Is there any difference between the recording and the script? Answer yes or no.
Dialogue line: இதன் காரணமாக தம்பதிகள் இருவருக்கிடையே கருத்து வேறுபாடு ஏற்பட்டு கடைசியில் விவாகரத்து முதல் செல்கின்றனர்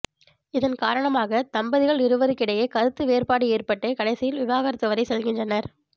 yes